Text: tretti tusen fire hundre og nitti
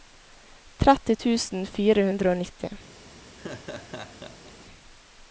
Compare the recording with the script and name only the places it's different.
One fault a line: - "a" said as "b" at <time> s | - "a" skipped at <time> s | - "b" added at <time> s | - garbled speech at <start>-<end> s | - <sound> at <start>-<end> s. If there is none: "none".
- laugh at 3.4-4.5 s